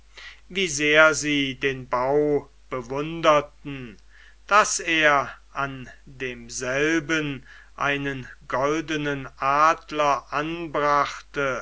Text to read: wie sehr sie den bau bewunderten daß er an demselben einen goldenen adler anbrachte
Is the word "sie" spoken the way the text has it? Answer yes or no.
yes